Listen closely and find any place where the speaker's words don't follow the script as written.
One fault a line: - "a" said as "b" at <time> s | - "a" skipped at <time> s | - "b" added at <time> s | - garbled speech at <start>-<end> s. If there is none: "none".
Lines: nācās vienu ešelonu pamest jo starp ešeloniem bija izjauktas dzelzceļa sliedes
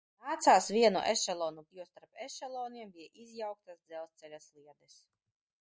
- "pamest" skipped at 1.6 s